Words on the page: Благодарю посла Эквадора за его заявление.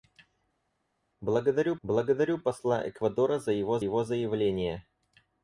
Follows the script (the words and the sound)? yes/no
no